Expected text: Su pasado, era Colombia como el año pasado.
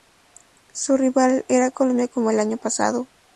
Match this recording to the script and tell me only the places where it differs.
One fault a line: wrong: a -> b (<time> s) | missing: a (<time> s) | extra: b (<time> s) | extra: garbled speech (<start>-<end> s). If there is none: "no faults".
wrong: pasado -> rival (1.0 s)